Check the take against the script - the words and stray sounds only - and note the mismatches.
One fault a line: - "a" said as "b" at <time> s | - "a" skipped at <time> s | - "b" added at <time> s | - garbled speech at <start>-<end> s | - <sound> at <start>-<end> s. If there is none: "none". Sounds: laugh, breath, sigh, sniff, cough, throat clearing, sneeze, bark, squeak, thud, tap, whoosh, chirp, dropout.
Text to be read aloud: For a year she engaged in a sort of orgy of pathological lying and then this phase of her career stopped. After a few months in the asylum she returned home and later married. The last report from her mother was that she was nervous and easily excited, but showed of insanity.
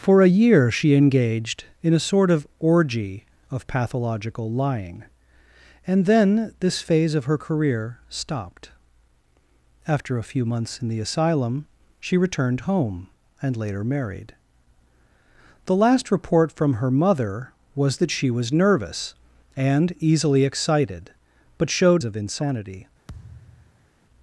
- thud at 23.1-23.9 s